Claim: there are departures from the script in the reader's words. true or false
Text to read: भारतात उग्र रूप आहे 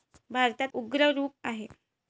false